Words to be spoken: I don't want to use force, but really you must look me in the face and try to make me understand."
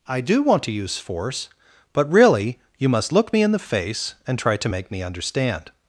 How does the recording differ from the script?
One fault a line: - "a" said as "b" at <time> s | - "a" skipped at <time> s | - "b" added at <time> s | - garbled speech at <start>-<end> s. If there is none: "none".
- "don't" said as "do" at 0.2 s